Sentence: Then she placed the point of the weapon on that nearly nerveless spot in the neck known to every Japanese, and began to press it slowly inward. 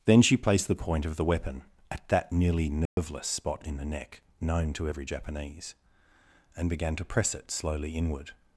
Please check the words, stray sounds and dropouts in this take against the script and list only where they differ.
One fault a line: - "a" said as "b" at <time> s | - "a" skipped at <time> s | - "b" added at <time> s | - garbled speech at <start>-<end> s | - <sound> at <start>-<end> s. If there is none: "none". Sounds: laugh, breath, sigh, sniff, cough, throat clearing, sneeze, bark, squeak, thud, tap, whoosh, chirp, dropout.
- "on" said as "at" at 1.9 s
- dropout at 2.9-3.0 s